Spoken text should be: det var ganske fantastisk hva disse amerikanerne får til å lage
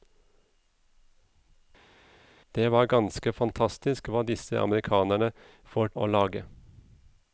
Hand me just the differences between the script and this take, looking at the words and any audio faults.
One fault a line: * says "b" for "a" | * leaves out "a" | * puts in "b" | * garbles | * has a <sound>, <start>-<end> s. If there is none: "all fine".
* leaves out "til"